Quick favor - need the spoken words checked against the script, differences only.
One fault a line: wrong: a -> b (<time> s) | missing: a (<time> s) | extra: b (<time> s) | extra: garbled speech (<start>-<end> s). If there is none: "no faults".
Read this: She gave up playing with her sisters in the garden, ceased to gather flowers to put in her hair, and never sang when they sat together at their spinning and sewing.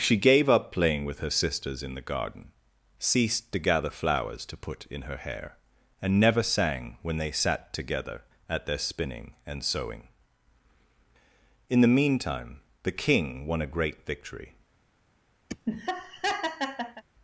extra: In the meantime the King won a great victory (11.7 s)